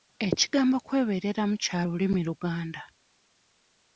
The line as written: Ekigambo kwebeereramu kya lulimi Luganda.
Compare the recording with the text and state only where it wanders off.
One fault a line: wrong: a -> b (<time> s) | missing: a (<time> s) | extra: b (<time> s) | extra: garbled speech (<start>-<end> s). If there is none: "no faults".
no faults